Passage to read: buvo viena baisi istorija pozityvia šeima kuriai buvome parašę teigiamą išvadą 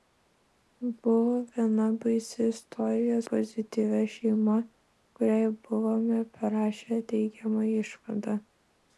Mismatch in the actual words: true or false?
false